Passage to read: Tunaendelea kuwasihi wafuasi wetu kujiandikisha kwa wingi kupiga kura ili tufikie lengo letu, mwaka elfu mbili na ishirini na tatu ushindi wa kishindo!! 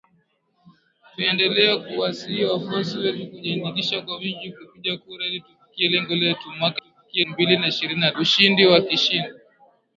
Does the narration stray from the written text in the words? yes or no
yes